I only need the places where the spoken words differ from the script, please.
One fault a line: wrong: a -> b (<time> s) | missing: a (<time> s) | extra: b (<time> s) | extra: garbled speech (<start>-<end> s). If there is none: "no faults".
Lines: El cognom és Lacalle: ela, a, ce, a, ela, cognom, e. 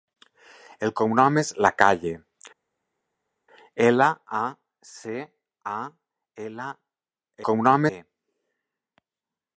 no faults